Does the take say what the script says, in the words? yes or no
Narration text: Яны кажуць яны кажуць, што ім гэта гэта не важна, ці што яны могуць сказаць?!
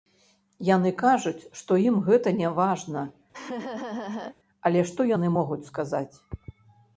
no